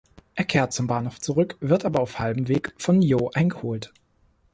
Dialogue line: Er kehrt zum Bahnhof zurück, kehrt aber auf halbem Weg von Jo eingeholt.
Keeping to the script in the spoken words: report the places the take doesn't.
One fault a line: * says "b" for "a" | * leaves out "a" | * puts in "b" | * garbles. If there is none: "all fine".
* says "wird" for "kehrt"